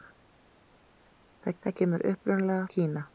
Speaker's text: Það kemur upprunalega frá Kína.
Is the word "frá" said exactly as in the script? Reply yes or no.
no